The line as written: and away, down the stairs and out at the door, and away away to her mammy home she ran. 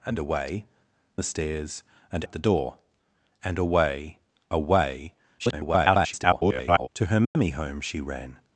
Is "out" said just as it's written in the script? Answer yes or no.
no